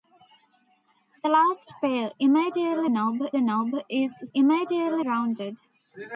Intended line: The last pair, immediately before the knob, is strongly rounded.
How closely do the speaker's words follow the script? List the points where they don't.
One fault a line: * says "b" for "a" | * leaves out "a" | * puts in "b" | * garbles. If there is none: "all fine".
* says "knob" for "before"
* says "immediately" for "strongly"